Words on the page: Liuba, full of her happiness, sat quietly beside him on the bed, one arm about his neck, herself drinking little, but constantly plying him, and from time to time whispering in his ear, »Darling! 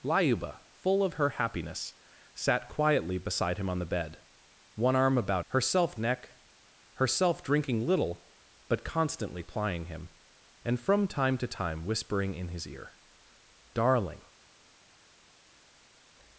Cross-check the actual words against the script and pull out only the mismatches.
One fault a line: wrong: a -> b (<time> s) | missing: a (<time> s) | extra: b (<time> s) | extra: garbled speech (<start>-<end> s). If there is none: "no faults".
wrong: his -> herself (5.5 s)